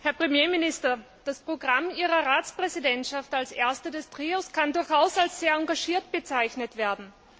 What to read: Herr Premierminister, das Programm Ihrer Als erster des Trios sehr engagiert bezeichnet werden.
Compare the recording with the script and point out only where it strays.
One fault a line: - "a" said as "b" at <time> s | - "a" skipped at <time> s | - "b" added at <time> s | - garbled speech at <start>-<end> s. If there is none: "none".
- "Ratspräsidentschaft" added at 2.3 s
- "kann durchaus als" added at 4.5 s